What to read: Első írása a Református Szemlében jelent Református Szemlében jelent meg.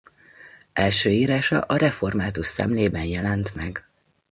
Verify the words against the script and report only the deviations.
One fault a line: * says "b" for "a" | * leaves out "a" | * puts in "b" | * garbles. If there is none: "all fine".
* leaves out "Református Szemlében jelent"